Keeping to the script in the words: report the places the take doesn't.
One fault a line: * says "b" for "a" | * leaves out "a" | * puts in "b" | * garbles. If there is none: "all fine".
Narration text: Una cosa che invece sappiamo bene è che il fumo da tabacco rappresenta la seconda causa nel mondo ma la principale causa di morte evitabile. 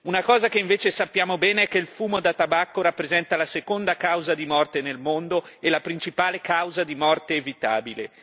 * puts in "di morte"
* says "e" for "ma"